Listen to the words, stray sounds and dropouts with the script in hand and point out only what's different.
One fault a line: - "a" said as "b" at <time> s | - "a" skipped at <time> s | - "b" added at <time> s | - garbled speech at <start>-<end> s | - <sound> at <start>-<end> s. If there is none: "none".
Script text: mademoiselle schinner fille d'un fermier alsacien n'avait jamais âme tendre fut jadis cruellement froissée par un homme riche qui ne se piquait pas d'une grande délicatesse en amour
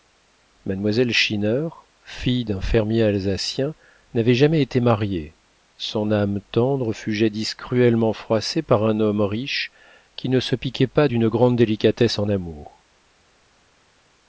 - "été mariée son" added at 4.6 s